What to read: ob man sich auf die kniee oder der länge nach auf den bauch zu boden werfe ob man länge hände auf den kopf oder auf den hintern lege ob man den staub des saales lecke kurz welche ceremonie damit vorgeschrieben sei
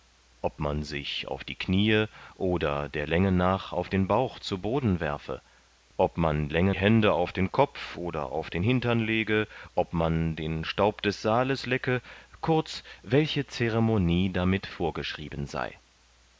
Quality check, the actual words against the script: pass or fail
pass